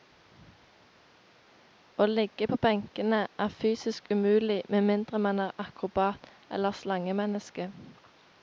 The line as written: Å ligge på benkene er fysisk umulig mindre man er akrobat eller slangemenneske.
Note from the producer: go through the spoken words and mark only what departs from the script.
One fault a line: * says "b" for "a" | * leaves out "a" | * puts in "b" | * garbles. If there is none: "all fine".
* puts in "med"